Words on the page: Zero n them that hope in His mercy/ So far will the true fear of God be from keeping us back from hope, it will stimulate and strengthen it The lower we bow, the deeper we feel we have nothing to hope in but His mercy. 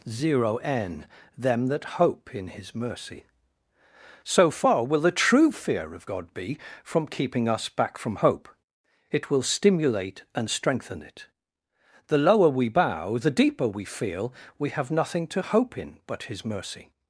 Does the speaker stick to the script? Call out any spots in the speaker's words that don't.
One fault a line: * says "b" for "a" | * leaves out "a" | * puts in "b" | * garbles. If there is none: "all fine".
all fine